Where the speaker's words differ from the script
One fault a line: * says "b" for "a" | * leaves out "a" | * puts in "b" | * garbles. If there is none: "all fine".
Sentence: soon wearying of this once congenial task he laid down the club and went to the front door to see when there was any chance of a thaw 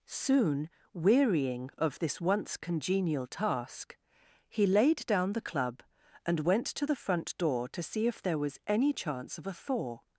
* says "if" for "when"